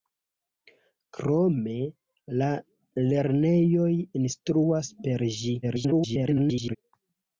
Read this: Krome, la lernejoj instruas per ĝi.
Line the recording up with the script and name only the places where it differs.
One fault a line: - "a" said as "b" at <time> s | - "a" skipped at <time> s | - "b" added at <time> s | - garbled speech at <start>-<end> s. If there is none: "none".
- garbled speech at 5.6-6.8 s